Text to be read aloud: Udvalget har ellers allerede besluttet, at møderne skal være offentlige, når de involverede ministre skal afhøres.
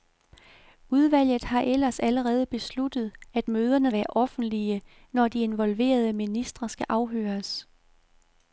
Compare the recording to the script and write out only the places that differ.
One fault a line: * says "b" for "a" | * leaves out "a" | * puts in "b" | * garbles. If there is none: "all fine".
* leaves out "skal"